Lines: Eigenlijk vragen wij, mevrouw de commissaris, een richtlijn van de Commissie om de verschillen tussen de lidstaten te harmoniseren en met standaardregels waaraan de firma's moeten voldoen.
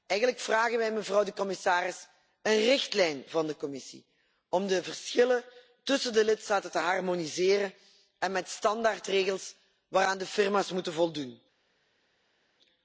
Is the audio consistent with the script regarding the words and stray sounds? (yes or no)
yes